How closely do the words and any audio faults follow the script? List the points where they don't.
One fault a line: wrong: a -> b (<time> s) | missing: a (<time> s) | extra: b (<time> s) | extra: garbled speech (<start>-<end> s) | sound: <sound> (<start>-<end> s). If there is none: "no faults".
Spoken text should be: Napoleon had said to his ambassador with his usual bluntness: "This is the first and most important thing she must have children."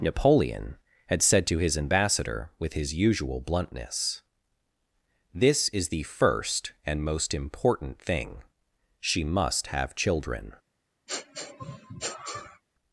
sound: sniff (11.1-12.6 s)